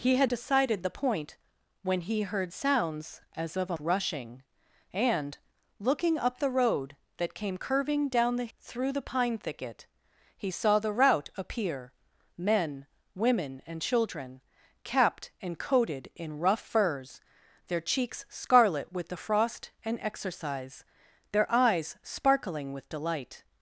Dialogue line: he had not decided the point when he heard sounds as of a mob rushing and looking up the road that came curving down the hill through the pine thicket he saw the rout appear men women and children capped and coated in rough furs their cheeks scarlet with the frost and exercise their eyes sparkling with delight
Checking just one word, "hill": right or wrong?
wrong